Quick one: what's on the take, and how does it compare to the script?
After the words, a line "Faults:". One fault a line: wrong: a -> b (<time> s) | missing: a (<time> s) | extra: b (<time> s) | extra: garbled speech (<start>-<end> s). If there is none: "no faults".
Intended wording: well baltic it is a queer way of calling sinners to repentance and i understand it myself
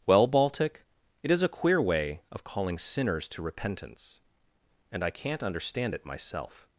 well baltic it is a queer way of calling sinners to repentance and i can't understand it myself
Faults:
extra: can't (5.1 s)